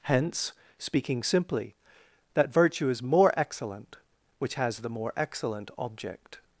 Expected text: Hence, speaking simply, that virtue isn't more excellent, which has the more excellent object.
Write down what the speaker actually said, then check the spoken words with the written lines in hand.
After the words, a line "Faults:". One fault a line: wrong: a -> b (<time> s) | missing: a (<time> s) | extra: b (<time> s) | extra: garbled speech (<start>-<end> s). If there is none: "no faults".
Hence, speaking simply, that virtue is more excellent, which has the more excellent object.
Faults:
wrong: isn't -> is (2.9 s)